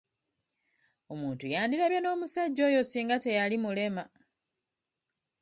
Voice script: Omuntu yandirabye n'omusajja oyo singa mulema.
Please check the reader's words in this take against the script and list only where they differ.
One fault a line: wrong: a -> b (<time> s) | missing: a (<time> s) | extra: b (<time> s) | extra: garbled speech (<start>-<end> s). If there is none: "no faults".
extra: teyali (3.2 s)